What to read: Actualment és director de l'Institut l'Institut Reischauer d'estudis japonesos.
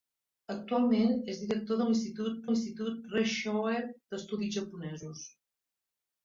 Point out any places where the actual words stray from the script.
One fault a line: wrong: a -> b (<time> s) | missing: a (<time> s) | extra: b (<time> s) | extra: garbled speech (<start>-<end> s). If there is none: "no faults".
no faults